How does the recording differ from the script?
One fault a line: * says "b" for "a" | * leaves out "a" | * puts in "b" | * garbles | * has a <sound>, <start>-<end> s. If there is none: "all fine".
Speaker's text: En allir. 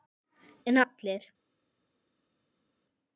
all fine